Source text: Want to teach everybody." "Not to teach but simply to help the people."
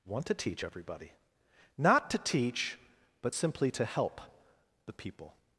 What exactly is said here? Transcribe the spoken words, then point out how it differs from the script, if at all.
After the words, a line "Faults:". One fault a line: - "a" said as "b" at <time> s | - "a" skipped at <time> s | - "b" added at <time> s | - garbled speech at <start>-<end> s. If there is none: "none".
Want to teach everybody." "Not to teach but simply to help the people."
Faults:
none